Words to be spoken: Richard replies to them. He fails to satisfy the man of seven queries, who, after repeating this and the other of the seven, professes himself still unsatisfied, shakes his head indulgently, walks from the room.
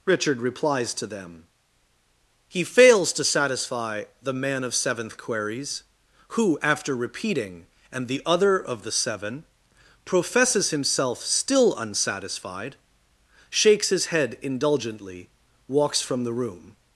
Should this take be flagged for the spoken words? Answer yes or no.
yes